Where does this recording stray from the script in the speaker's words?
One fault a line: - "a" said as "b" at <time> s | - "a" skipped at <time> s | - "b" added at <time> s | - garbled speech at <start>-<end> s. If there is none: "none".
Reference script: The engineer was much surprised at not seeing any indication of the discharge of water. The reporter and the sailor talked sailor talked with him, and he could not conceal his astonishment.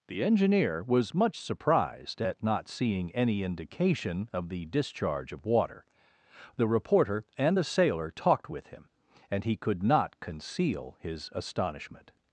- "sailor talked" skipped at 8.5 s